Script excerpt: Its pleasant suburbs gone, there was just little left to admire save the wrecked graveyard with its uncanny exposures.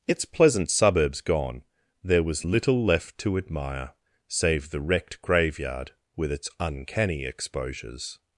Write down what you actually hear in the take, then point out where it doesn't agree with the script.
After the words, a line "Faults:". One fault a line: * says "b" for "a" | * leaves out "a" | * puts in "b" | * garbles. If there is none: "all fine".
Its pleasant suburbs gone, there was little left to admire save the wrecked graveyard with its uncanny exposures.
Faults:
* leaves out "just"